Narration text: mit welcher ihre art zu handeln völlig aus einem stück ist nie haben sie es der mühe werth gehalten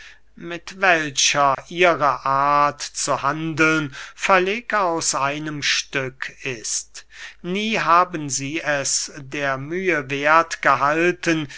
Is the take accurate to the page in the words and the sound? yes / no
no